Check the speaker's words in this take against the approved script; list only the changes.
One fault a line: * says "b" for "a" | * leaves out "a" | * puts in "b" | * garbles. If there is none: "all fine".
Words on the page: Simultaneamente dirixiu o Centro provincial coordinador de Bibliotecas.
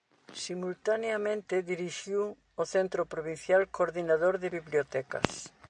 all fine